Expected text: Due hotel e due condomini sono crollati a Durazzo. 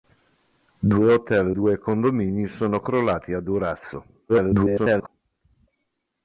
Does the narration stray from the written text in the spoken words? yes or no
yes